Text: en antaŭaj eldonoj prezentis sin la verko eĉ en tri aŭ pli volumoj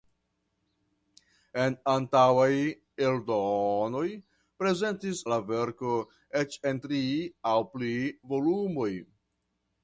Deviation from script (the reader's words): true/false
true